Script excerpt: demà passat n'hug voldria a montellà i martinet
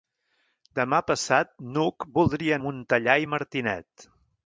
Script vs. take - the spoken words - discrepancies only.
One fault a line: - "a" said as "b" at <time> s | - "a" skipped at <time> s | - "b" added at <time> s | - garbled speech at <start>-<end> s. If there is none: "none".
none